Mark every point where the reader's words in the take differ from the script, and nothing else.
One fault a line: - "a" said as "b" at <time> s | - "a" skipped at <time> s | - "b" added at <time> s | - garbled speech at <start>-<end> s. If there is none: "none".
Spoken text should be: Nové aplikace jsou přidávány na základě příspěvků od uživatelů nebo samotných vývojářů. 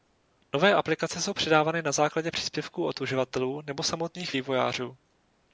none